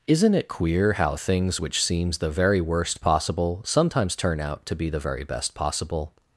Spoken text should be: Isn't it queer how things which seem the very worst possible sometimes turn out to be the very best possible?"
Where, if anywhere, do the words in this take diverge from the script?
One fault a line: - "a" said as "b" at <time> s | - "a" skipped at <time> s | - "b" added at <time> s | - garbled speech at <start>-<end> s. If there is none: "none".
- "seem" said as "seems" at 1.8 s